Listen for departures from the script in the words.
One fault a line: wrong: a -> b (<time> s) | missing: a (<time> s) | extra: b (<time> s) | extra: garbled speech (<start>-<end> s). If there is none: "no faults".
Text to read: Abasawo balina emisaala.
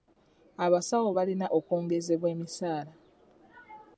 extra: okwongezebwa (1.6 s)